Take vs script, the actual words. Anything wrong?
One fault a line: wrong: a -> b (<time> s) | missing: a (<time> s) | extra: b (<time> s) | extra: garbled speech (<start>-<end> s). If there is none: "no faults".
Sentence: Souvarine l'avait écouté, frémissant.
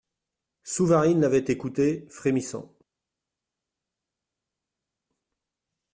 no faults